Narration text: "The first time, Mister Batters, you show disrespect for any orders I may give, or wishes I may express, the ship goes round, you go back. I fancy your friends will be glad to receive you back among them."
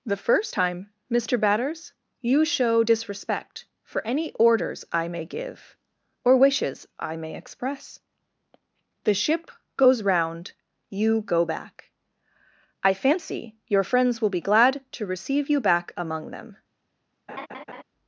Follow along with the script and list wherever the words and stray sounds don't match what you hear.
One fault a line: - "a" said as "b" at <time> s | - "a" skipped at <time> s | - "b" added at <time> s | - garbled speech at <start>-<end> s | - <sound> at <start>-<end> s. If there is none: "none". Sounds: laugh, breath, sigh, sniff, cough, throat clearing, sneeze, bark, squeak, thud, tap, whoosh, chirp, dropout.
- laugh at 17.3-17.8 s